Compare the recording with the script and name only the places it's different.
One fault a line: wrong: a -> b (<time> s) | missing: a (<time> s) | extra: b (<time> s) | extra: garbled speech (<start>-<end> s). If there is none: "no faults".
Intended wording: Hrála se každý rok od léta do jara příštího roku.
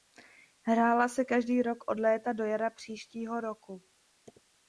no faults